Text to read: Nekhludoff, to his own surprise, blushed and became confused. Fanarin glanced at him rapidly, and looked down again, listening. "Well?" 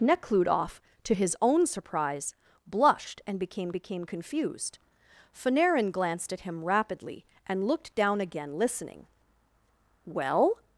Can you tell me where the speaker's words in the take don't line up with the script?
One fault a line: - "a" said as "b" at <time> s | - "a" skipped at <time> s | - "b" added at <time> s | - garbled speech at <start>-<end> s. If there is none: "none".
- "became" added at 3.7 s